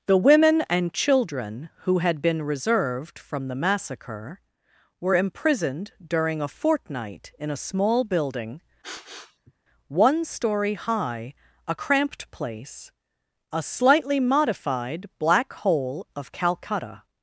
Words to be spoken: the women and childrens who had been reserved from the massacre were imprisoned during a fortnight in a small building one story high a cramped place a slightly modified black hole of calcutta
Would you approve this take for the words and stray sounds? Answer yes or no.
no